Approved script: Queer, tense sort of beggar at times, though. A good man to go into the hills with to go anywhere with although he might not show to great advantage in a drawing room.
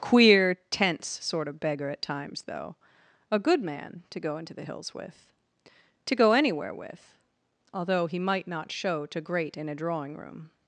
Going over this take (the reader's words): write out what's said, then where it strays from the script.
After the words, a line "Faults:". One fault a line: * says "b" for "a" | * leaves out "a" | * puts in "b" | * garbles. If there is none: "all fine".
Queer, tense sort of beggar at times, though. A good man to go into the hills with to go anywhere with although he might not show to great in a drawing room.
Faults:
* leaves out "advantage"